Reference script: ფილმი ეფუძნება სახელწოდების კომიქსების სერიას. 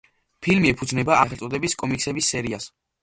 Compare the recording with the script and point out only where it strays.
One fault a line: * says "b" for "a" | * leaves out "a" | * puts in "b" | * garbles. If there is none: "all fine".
all fine